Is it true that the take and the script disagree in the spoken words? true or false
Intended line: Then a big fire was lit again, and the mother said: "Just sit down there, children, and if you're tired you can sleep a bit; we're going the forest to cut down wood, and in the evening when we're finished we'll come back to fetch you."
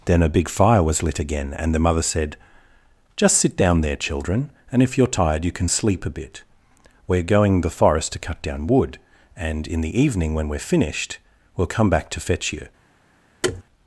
false